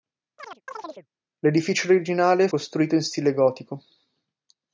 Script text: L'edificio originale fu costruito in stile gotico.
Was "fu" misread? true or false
true